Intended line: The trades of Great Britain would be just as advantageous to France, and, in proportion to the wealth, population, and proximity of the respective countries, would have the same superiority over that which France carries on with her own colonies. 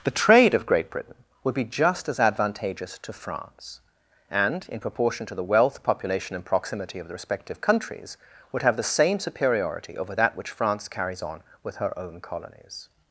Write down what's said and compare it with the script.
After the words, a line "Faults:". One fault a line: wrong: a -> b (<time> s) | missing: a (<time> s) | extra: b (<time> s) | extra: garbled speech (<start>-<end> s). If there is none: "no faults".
The trade of Great Britain would be just as advantageous to France, and, in proportion to the wealth, population, and proximity of the respective countries, would have the same superiority over that which France carries on with her own colonies.
Faults:
wrong: trades -> trade (0.2 s)